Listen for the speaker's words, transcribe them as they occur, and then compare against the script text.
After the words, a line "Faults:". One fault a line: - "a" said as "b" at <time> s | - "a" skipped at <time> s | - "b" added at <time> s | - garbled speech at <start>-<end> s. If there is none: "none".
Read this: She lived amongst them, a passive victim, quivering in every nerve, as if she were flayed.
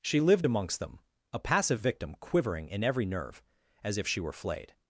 She lived amongst them, a passive victim, quivering in every nerve, as if she were flayed.
Faults:
none